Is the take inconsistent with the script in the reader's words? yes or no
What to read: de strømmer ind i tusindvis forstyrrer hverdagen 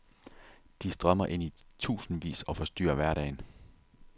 yes